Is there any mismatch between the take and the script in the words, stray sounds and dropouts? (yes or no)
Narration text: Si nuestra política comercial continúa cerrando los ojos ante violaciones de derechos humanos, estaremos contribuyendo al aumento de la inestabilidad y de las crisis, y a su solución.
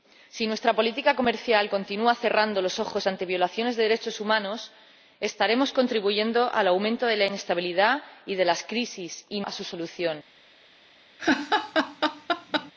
yes